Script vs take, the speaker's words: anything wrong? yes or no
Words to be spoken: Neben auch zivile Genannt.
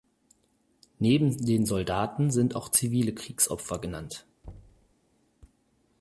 yes